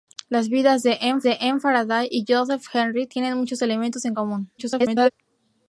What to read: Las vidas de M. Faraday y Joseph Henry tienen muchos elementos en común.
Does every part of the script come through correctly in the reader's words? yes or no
no